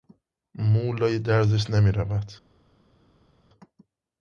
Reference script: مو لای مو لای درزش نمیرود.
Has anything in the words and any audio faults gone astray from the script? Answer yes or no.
yes